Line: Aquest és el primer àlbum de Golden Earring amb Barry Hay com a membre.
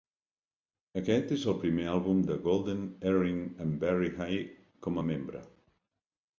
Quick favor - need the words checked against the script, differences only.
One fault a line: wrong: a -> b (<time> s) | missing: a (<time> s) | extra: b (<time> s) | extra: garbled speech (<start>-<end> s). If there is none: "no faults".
no faults